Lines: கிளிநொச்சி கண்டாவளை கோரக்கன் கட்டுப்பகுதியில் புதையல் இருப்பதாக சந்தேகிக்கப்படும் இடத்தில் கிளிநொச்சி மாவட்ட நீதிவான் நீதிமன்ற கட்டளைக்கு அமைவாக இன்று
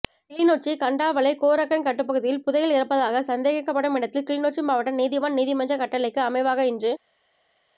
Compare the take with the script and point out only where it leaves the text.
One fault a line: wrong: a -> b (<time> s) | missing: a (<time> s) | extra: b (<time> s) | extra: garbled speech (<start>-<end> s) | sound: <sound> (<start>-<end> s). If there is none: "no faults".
no faults